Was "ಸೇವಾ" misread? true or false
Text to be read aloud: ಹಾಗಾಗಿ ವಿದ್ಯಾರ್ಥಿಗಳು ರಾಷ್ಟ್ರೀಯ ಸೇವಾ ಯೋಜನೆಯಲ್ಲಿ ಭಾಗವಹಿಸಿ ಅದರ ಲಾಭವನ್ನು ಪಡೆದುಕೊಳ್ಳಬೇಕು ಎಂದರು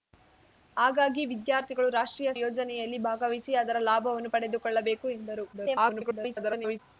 true